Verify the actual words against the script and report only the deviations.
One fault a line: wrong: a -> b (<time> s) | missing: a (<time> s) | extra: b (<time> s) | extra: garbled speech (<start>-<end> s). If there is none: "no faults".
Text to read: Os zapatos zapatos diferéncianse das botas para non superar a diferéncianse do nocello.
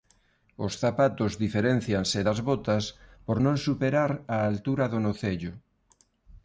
missing: zapatos (1.3 s)
wrong: para -> por (3.2 s)
wrong: diferéncianse -> altura (4.5 s)